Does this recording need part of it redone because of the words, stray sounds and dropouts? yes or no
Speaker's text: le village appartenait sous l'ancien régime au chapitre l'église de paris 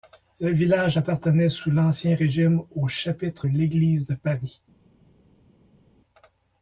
no